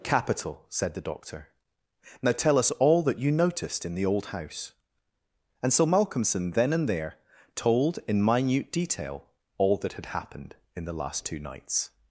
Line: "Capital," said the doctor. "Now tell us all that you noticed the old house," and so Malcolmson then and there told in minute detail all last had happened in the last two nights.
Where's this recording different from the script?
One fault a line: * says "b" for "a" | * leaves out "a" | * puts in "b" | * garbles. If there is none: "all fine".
* puts in "in"
* says "that" for "last"